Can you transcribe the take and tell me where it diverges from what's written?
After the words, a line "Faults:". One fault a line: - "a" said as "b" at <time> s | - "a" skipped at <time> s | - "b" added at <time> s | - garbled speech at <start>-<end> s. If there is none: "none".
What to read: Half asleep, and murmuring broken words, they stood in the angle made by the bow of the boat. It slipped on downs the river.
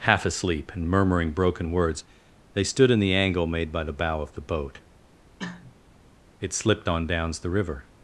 Half asleep, and murmuring broken words, they stood in the angle made by the bow of the boat. It slipped on downs the river.
Faults:
none